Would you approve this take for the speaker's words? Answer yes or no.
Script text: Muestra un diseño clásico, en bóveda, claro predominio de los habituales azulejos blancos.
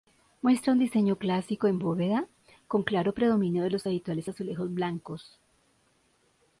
no